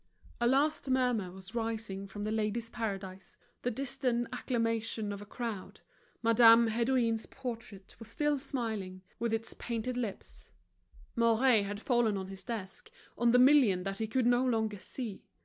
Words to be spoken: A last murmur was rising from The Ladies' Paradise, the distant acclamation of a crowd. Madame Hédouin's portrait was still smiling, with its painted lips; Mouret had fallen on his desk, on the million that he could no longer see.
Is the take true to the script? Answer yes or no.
yes